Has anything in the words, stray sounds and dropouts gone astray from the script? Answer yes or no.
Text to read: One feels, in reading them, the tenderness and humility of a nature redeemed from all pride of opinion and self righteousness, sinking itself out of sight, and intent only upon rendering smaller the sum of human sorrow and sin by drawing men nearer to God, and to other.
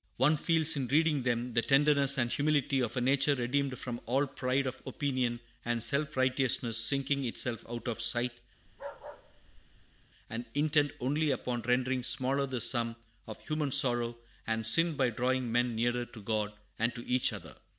yes